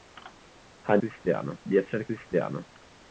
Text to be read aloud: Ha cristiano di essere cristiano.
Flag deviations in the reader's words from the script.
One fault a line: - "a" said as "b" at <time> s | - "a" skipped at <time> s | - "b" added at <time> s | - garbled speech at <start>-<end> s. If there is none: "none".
none